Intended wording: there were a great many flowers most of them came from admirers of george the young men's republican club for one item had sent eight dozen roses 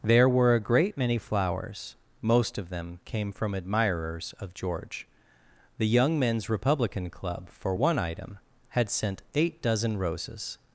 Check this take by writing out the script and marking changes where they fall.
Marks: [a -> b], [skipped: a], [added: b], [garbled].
there were a great many flowers most of them came from admirers of george the young men's republican club for one item had sent eight dozen roses